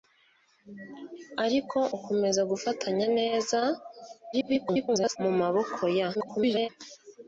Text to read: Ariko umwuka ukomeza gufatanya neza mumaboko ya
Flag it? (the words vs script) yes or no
yes